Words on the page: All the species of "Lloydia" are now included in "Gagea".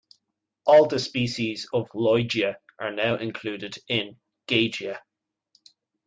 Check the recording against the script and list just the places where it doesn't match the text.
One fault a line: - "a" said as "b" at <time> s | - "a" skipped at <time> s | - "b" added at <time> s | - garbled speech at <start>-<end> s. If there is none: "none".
none